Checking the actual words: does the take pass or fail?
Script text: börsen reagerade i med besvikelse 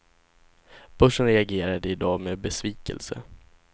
fail